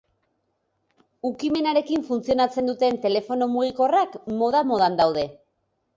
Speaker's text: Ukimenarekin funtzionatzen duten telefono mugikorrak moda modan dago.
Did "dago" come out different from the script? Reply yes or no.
yes